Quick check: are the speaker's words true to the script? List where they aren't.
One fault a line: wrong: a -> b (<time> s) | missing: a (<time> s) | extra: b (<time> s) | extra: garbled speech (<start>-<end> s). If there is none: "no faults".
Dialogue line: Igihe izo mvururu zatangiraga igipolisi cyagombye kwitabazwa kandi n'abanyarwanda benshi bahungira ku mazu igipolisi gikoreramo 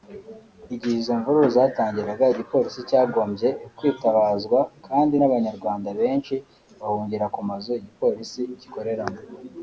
no faults